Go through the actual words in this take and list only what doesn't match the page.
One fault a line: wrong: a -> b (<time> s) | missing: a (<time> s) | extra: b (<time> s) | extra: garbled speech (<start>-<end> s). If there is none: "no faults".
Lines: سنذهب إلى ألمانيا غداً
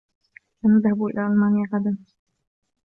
no faults